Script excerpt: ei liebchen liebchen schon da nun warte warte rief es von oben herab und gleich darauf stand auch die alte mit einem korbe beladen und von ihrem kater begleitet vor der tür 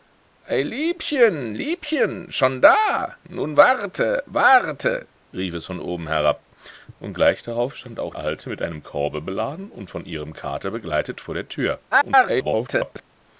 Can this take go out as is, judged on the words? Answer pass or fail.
fail